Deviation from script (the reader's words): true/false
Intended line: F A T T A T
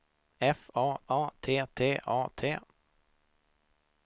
true